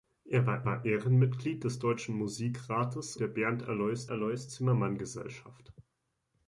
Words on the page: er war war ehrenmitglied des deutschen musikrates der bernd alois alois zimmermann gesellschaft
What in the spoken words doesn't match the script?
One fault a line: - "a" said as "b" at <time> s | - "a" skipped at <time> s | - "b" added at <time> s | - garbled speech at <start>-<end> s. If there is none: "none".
none